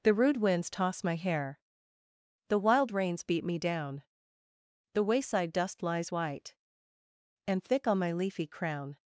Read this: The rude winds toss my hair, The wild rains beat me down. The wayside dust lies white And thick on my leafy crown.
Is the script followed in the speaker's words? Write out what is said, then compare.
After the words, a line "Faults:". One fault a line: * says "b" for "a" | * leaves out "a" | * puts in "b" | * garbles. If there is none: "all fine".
The rude winds toss my hair, The wild rains beat me down. The wayside dust lies white And thick on my leafy crown.
Faults:
all fine